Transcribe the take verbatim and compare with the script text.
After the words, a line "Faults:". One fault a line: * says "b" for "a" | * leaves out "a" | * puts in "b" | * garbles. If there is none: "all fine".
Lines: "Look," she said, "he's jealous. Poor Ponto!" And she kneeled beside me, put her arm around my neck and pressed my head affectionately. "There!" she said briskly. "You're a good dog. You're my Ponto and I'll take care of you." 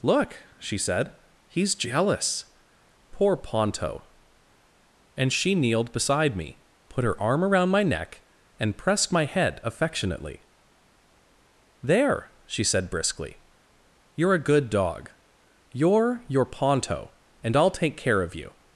"Look," she said, "he's jealous. Poor Ponto!" And she kneeled beside me, put her arm around my neck and pressed my head affectionately. "There!" she said briskly. "You're a good dog. You're your Ponto and I'll take care of you."
Faults:
* says "your" for "my"